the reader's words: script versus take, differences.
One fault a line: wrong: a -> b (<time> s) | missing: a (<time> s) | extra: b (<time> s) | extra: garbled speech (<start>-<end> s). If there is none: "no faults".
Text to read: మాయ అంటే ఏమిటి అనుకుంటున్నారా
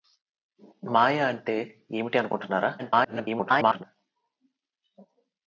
extra: garbled speech (2.8-3.8 s)